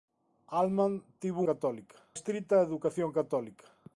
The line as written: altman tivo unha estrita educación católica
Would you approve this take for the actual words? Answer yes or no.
no